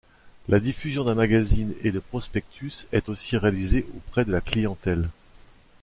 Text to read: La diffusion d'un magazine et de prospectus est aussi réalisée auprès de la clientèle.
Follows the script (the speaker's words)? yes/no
yes